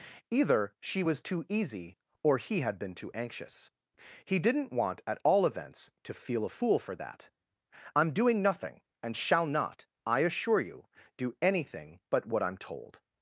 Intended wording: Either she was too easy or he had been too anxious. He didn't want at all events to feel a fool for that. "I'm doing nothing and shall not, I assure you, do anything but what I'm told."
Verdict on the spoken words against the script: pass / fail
pass